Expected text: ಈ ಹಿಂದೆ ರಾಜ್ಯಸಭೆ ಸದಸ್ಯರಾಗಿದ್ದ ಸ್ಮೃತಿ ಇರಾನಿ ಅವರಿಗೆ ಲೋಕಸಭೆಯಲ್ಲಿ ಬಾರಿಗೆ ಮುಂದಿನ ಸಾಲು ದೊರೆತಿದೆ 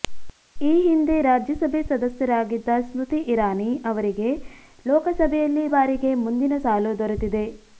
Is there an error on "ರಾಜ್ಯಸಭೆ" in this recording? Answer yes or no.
no